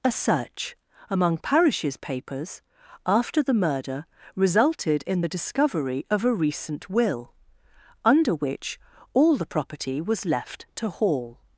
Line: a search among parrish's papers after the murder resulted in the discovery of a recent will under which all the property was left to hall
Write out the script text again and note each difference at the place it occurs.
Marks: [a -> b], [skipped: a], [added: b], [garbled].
a search among parrish's papers after the murder resulted in the discovery of a recent will under which all the property was left to hall